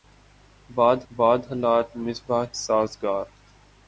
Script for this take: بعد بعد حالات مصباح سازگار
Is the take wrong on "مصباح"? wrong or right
right